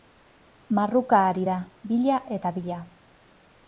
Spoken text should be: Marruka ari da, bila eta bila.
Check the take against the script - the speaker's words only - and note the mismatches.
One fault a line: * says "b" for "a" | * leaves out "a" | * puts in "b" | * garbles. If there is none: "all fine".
all fine